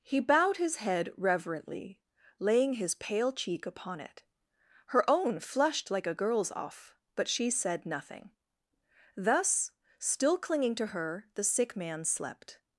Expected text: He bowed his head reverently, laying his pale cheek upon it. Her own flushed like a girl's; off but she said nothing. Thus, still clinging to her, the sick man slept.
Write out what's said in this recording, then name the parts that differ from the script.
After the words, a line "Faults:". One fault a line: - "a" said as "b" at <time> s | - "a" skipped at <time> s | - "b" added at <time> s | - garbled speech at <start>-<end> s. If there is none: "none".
He bowed his head reverently, laying his pale cheek upon it. Her own flushed like a girl's; off but she said nothing. Thus, still clinging to her, the sick man slept.
Faults:
none